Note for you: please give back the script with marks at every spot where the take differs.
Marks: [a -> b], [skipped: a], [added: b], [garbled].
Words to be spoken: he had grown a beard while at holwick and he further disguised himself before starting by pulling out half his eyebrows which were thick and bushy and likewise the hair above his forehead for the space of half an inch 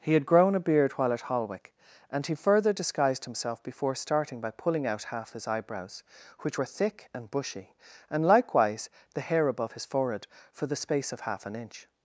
he had grown a beard while at holwick and he further disguised himself before starting by pulling out half his eyebrows which were thick and bushy and likewise the hair above his forehead for the space of half an inch